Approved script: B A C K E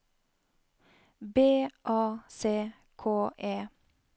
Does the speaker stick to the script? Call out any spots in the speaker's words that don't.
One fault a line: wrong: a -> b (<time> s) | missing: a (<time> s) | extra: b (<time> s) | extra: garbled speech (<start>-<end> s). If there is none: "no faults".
no faults